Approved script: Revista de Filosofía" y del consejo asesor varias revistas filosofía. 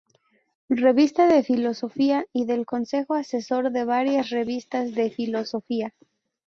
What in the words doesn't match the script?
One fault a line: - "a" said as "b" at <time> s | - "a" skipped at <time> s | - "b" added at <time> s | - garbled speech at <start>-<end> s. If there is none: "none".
- "de" added at 3.7 s
- "de" added at 5.0 s